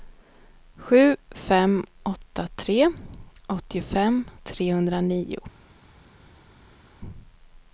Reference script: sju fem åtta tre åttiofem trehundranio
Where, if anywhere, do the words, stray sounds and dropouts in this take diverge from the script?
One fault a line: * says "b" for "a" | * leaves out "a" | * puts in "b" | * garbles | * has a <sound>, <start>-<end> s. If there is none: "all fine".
all fine